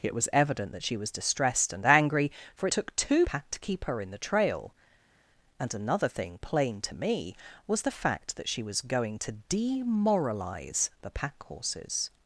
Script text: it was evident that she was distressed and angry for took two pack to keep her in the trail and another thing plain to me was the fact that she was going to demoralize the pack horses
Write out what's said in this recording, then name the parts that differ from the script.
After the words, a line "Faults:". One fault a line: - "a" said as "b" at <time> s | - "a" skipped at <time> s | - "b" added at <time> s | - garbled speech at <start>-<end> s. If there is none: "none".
it was evident that she was distressed and angry for took two pack to keep her in the trail and another thing plain to me was the fact that she was going to demoralize the pack horses
Faults:
none